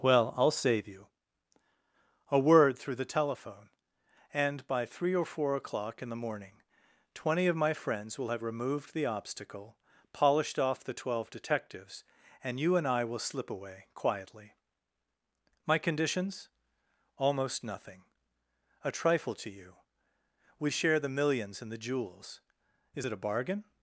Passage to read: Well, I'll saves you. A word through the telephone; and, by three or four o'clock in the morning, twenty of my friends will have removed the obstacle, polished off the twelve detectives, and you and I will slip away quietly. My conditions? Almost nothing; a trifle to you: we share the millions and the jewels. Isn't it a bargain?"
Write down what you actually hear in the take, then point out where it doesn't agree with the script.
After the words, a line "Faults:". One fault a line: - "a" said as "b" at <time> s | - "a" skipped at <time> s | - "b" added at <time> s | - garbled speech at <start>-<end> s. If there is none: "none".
Well, I'll save you. A word through the telephone; and, by three or four o'clock in the morning, twenty of my friends will have removed the obstacle, polished off the twelve detectives, and you and I will slip away quietly. My conditions? Almost nothing; a trifle to you: we share the millions and the jewels. Is it a bargain?"
Faults:
- "saves" said as "save" at 0.5 s
- "Isn't" said as "Is" at 22.9 s